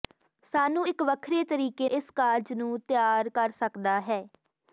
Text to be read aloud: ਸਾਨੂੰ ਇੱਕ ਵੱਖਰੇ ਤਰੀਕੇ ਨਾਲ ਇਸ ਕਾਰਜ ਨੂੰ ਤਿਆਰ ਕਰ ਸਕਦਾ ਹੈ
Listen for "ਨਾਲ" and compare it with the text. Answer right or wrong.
wrong